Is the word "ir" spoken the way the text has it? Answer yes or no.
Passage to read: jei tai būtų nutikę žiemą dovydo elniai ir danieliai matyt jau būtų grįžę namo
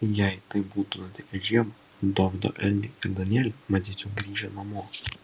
yes